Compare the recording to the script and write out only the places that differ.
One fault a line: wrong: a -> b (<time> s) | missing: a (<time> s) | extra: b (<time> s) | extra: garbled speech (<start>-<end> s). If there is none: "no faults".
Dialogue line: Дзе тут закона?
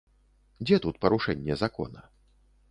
extra: парушэнне (1.0 s)